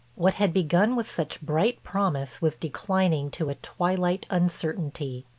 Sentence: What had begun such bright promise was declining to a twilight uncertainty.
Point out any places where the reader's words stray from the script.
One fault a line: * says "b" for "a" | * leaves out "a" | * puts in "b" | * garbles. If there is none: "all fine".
* puts in "with"